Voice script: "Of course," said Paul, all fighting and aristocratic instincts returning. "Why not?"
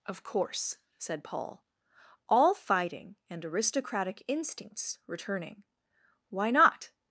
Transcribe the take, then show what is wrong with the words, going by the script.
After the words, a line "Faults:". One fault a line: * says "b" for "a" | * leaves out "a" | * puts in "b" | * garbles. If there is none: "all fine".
"Of course," said Paul, all fighting and aristocratic instincts returning. "Why not?"
Faults:
all fine